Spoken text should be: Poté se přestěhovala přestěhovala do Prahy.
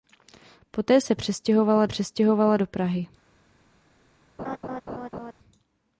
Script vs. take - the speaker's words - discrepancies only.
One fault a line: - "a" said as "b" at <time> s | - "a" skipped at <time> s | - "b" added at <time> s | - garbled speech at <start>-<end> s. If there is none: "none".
none